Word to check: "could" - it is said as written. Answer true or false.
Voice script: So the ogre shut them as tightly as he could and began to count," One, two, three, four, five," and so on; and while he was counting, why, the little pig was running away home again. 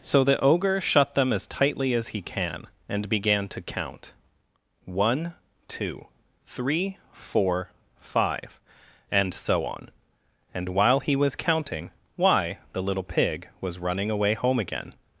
false